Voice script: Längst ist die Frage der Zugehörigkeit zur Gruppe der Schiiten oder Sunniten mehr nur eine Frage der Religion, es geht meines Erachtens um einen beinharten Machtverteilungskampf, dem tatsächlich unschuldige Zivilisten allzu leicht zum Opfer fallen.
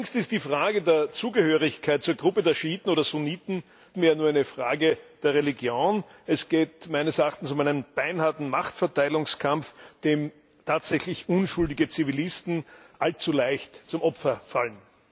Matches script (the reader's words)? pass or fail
pass